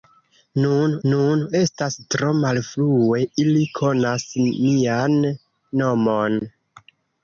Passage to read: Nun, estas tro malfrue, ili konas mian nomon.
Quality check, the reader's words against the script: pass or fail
fail